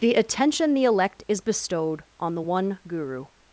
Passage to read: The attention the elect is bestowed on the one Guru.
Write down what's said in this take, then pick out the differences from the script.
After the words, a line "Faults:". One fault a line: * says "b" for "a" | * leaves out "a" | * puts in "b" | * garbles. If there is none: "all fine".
The attention the elect is bestowed on the one Guru.
Faults:
all fine